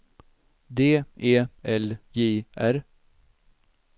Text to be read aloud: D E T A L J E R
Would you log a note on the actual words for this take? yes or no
yes